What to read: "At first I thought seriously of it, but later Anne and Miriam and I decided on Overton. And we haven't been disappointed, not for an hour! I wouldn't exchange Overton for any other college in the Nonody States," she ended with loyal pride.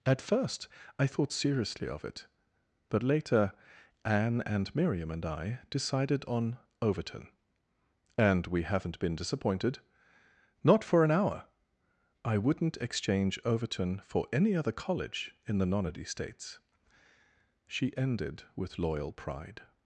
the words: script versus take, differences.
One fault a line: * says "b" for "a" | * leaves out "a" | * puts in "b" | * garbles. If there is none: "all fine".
all fine